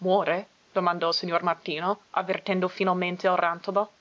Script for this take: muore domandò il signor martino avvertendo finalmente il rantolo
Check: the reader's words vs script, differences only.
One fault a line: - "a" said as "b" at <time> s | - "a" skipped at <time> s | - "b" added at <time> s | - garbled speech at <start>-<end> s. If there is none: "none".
none